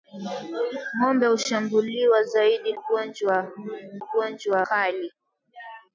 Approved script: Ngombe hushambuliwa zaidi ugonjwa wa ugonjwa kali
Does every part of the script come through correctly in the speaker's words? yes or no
yes